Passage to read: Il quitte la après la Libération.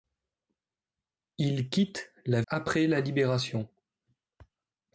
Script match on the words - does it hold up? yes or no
yes